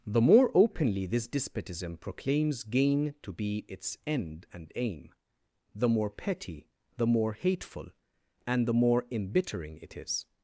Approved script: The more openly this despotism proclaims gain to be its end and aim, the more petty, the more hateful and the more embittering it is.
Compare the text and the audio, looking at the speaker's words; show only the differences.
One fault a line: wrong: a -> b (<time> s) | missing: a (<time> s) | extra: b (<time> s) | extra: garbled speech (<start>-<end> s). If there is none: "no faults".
no faults